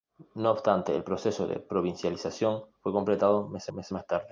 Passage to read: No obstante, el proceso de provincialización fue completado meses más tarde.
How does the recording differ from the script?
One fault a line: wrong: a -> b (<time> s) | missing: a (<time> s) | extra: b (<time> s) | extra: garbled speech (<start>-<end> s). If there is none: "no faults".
extra: meses (3.7 s)